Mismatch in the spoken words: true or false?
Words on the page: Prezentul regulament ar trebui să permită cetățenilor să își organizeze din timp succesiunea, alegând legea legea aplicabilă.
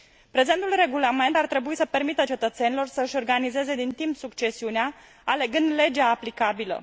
true